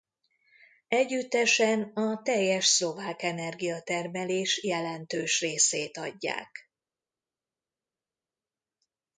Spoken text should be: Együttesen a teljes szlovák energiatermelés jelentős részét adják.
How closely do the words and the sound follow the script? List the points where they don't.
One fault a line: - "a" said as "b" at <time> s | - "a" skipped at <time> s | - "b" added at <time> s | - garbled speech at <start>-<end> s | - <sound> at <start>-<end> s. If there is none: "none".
none